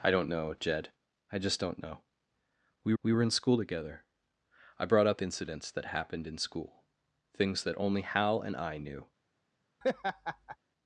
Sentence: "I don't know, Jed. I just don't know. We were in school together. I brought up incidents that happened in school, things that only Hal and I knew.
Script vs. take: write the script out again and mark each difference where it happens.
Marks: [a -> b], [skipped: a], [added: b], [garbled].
"I don't know, Jed. I just don't know. We [added: we] were in school together. I brought up incidents that happened in school, things that only Hal and I knew.